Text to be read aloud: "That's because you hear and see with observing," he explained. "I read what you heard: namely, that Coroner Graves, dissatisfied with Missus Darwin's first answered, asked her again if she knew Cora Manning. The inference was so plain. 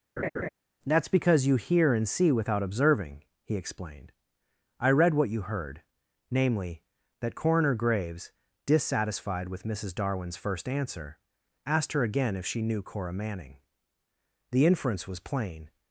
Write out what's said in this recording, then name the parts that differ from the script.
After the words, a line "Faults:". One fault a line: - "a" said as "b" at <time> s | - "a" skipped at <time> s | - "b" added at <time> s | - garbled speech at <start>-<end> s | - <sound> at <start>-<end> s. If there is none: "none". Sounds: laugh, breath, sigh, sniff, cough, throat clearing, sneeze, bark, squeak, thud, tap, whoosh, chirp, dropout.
"That's because you hear and see without observing," he explained. "I read what you heard: namely, that Coroner Graves, dissatisfied with Missus Darwin's first answer, asked her again if she knew Cora Manning. The inference was plain.
Faults:
- laugh at 0.2-0.5 s
- "with" said as "without" at 2.3 s
- "answered" said as "answer" at 10.7 s
- "so" skipped at 15.2 s